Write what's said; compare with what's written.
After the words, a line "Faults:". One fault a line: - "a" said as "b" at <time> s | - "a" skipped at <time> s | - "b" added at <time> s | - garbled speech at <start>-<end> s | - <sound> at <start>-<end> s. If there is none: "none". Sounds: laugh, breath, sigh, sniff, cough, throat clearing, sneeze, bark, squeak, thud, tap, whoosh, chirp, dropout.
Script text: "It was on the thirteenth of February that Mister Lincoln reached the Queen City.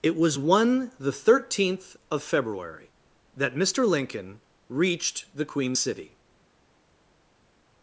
"It was one the thirteenth of February that Mister Lincoln reached the Queen City.
Faults:
- "on" said as "one" at 0.4 s